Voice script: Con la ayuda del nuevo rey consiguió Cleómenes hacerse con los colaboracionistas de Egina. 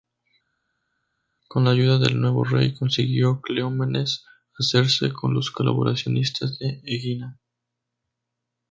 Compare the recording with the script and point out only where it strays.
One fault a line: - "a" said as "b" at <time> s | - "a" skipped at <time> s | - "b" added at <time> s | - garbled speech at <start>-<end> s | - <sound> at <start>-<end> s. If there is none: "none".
none